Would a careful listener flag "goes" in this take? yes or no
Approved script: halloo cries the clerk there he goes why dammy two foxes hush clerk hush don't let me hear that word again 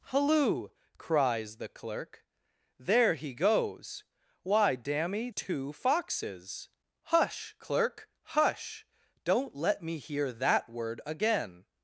no